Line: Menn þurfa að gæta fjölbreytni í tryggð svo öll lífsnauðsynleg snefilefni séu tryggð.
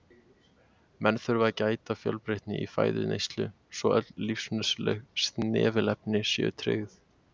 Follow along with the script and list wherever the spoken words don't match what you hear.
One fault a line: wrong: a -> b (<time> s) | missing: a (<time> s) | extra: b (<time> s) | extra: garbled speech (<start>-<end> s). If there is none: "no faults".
wrong: tryggð -> fæðuneyslu (2.8 s)